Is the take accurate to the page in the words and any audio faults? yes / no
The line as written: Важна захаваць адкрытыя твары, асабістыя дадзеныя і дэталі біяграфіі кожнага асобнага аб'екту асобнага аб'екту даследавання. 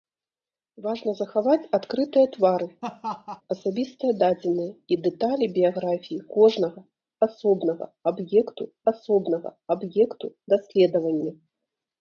no